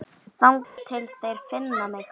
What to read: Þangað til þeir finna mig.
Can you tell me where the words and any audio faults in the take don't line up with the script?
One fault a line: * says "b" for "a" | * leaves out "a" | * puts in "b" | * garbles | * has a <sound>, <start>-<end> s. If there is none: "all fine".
* has a dropout, 0.6-0.8 s